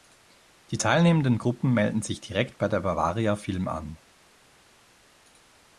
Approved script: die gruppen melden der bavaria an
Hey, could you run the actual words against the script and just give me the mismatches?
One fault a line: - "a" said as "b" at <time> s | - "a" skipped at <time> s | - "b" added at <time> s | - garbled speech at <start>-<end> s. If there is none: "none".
- "teilnehmenden" added at 0.8 s
- "sich direkt bei" added at 2.0 s
- "film" added at 3.4 s